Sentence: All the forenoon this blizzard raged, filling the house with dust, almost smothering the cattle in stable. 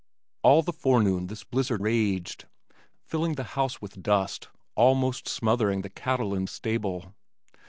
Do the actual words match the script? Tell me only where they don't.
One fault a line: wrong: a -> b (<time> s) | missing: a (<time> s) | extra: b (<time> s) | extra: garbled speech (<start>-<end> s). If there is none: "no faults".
no faults